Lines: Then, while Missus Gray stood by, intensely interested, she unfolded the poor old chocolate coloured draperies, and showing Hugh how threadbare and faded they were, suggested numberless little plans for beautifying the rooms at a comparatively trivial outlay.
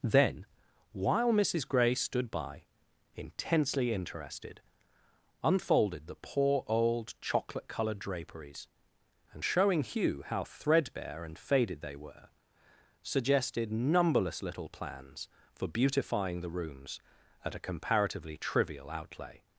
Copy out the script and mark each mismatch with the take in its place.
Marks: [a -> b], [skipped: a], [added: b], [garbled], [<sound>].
Then, while Missus Gray stood by, intensely interested, [skipped: she] unfolded the poor old chocolate coloured draperies, and showing Hugh how threadbare and faded they were, suggested numberless little plans for beautifying the rooms at a comparatively trivial outlay.